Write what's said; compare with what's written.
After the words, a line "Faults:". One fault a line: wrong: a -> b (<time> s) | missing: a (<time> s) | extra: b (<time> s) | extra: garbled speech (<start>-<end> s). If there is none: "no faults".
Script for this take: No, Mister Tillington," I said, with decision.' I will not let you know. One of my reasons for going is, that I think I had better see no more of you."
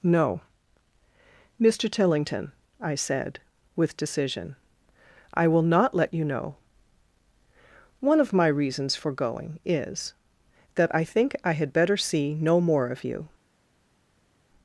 No, Mister Tillington," I said, with decision.' I will not let you know. One of my reasons for going is, that I think I had better see no more of you."
Faults:
no faults